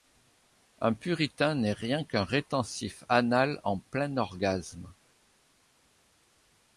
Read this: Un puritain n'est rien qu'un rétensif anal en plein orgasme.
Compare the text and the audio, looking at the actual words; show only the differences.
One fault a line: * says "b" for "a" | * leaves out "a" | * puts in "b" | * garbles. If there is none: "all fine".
all fine